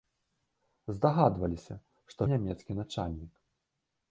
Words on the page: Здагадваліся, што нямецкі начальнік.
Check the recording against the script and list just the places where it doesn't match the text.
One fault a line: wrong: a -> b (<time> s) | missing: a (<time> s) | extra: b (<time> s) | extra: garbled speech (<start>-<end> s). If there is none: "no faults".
no faults